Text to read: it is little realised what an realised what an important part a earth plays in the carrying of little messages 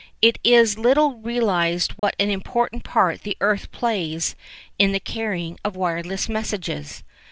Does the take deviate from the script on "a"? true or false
true